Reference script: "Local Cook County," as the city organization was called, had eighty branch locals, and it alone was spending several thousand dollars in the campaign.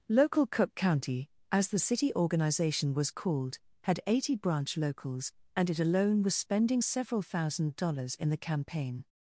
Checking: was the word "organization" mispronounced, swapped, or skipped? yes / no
no